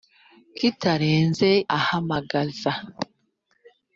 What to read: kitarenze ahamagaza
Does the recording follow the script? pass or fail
pass